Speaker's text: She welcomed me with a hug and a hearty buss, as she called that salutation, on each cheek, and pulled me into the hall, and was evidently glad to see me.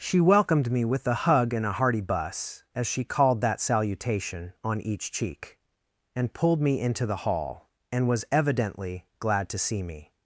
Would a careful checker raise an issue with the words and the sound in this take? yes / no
no